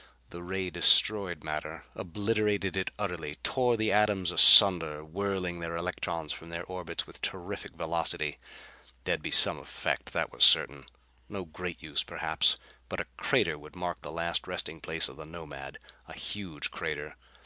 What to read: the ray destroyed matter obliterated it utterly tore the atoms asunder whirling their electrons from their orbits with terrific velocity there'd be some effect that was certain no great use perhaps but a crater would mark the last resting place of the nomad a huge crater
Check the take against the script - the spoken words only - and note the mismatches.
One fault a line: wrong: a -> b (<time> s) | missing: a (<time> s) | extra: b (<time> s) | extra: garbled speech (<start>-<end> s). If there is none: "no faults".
no faults